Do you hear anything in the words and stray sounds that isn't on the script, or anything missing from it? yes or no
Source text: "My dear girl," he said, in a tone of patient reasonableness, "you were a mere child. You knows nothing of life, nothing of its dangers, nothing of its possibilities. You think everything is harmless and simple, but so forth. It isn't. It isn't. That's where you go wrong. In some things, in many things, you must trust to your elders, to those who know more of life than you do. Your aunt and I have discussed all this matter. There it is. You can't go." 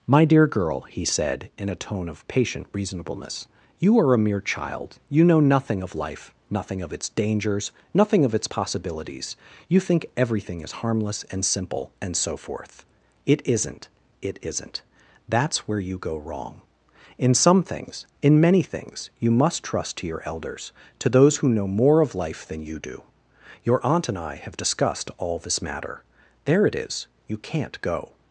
yes